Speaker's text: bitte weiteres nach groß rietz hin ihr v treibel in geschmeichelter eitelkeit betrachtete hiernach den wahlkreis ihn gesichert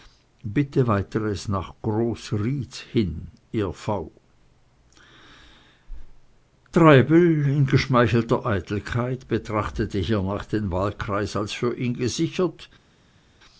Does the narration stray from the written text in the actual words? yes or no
yes